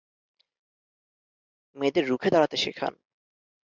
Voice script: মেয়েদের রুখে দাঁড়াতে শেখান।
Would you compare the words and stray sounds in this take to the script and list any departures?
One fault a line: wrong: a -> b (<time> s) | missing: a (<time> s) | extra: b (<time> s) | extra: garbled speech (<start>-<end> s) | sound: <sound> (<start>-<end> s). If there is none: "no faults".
no faults